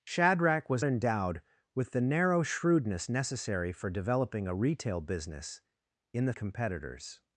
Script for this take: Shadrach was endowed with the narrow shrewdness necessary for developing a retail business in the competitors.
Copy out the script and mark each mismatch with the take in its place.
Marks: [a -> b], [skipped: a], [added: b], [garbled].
Shadrach was endowed with the narrow shrewdness necessary for developing a retail business in the competitors.